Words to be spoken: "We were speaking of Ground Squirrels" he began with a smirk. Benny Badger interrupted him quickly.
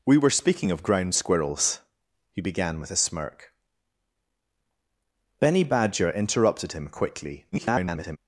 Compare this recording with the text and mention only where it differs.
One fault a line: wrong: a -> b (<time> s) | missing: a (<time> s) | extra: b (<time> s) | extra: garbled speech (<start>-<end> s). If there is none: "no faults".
extra: garbled speech (7.5-8.2 s)